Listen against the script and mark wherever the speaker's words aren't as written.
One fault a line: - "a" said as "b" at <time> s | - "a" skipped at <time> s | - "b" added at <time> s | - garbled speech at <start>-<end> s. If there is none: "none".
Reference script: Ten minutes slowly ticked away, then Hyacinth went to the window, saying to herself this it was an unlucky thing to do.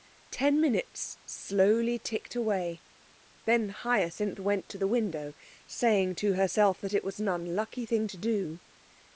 - "this" said as "that" at 6.8 s